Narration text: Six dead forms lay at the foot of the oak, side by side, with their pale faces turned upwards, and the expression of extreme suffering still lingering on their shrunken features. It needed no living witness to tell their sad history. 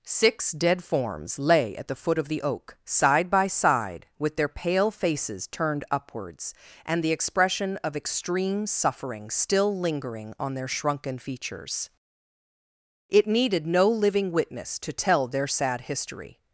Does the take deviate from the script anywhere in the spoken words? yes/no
no